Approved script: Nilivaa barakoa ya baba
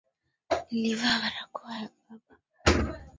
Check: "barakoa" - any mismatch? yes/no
no